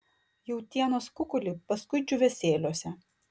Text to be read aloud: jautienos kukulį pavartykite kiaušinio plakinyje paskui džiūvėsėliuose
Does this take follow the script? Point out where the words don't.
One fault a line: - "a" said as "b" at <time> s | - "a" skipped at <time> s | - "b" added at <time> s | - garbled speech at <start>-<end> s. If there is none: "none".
- "pavartykite kiaušinio plakinyje" skipped at 1.5 s